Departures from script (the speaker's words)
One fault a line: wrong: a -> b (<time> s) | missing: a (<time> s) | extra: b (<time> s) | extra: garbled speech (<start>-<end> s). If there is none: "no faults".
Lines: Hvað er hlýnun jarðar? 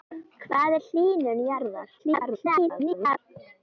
extra: garbled speech (2.0-3.2 s)